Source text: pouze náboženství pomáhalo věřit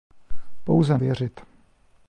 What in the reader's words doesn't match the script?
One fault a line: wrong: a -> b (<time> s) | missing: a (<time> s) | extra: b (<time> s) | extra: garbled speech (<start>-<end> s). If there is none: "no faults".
missing: náboženství pomáhalo (1.0 s)